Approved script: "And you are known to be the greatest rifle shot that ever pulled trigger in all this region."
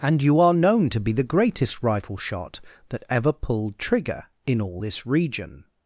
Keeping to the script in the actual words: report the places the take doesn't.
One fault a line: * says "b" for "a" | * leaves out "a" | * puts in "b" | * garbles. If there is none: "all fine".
all fine